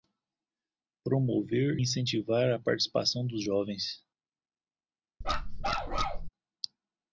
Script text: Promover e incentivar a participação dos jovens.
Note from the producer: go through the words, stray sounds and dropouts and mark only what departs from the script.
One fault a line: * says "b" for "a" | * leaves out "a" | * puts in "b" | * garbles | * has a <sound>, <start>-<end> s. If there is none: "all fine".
* leaves out "e"
* has a bark, 5.2-6.3 s